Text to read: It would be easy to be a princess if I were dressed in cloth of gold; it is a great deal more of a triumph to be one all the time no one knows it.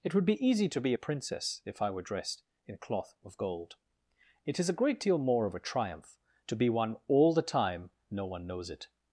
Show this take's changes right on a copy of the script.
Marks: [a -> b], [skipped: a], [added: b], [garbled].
It would be easy to be a princess if I were dressed in cloth of gold; it is a great deal more of a triumph to be one all the time no one knows it.